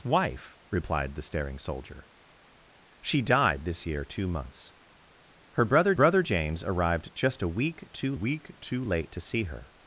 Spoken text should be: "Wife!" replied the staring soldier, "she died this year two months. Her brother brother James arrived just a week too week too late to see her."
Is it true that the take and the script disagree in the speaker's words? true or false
false